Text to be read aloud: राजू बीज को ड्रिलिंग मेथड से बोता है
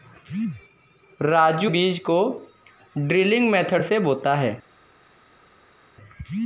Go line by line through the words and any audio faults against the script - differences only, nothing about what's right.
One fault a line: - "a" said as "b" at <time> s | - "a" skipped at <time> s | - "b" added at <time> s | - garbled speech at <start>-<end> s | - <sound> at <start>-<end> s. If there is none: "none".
none